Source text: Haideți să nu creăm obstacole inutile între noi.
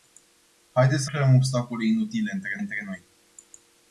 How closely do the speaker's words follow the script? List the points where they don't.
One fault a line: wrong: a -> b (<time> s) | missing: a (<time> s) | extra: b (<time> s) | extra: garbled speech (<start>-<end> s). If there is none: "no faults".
missing: nu (1.1 s)
extra: între (2.6 s)